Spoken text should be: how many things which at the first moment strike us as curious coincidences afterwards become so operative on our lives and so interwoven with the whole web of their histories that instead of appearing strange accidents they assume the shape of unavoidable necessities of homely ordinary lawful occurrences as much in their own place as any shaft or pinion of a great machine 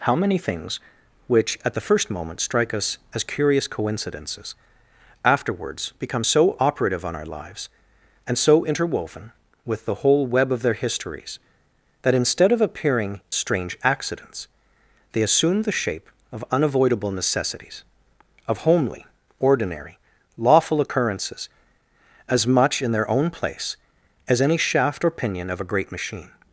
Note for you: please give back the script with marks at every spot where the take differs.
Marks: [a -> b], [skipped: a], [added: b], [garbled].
how many things which at the first moment strike us as curious coincidences afterwards become so operative on our lives and so interwoven with the whole web of their histories that instead of appearing strange accidents they assume the shape of unavoidable necessities of homely ordinary lawful occurrences as much in their own place as any shaft or pinion of a great machine